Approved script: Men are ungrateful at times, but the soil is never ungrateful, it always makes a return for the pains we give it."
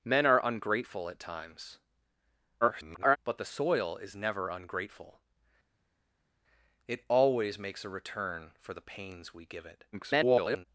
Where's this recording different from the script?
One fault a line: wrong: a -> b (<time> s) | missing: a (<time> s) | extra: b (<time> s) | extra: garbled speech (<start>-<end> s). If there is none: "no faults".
extra: garbled speech (2.6-3.2 s)
extra: garbled speech (9.9-10.7 s)